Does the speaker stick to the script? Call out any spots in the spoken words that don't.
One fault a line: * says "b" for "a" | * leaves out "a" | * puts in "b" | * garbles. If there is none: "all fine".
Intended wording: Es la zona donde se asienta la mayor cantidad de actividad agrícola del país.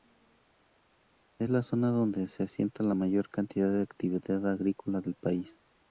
all fine